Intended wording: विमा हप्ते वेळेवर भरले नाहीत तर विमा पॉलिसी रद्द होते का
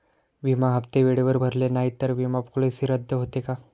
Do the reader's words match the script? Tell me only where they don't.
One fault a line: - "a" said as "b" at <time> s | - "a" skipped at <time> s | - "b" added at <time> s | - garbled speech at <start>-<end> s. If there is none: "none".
none